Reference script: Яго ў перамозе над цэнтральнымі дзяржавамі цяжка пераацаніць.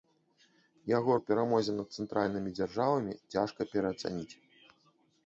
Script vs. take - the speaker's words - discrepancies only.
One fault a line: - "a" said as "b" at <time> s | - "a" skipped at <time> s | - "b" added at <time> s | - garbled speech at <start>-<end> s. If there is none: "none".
none